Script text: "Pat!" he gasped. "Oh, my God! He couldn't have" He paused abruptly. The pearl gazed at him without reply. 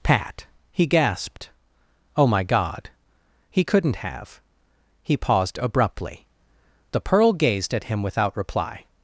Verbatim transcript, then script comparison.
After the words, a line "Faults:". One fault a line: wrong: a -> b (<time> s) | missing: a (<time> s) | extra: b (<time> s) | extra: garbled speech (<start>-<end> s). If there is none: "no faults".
"Pat!" he gasped. "Oh, my God! He couldn't have" He paused abruptly. The pearl gazed at him without reply.
Faults:
no faults